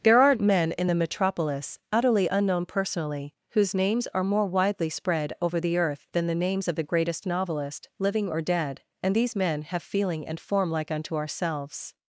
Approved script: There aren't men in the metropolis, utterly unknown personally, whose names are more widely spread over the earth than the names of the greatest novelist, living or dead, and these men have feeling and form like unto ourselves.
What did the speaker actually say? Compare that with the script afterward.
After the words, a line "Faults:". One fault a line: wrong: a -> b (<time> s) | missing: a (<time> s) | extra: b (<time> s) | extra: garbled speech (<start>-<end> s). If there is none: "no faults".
There aren't men in the metropolis, utterly unknown personally, whose names are more widely spread over the earth than the names of the greatest novelist, living or dead, and these men have feeling and form like unto ourselves.
Faults:
no faults